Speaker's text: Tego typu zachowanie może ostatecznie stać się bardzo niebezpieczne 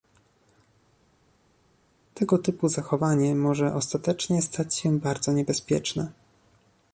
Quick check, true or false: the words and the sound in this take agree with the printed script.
true